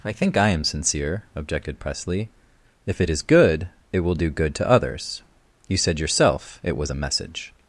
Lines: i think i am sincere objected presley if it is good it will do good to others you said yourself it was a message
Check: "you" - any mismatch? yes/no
no